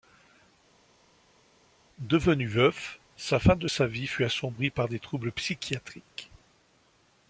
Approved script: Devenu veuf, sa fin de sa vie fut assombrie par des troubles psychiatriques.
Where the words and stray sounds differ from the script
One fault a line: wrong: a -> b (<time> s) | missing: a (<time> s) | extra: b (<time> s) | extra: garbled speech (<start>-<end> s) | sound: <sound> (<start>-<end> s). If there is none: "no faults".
no faults